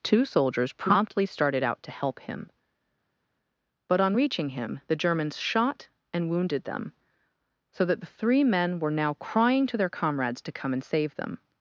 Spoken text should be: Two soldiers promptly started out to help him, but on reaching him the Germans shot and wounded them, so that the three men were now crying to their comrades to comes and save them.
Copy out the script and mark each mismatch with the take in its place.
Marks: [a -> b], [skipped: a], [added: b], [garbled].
Two soldiers promptly started out to help him, but on reaching him the Germans shot and wounded them, so that the three men were now crying to their comrades to [comes -> come] and save them.